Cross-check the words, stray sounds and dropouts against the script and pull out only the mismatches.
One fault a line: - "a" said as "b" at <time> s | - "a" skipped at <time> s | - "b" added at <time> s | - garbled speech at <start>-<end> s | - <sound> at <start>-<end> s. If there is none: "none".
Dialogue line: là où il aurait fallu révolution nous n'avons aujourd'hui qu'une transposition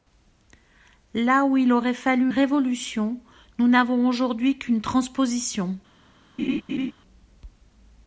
- laugh at 6.4-6.9 s